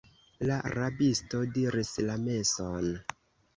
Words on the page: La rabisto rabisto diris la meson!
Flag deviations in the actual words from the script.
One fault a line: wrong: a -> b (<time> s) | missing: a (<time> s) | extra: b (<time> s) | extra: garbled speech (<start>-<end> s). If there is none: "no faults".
missing: rabisto (1.4 s)